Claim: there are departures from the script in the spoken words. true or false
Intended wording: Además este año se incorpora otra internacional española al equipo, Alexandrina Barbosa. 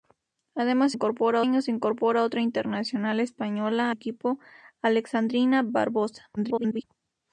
true